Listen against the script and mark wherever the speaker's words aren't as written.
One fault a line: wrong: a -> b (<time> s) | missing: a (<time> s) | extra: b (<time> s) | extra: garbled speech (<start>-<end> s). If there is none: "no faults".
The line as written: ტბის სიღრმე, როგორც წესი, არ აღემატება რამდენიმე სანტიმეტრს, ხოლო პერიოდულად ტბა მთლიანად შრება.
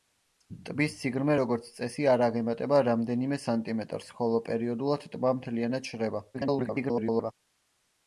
extra: garbled speech (6.3-7.3 s)